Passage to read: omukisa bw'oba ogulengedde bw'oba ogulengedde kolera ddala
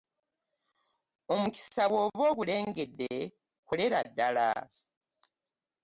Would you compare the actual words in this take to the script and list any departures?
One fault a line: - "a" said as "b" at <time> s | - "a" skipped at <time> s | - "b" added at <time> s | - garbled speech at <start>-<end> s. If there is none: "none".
- "bw'oba ogulengedde" skipped at 3.1 s